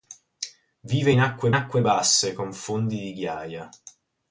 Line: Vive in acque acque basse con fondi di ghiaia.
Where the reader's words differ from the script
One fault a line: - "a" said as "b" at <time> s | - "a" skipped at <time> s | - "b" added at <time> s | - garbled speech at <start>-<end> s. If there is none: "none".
none